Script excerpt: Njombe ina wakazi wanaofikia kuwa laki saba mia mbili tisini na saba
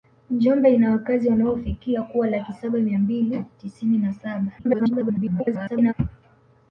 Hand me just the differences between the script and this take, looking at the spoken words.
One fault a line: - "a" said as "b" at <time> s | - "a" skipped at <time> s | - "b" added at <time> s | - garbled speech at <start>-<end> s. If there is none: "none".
- garbled speech at 4.6-5.9 s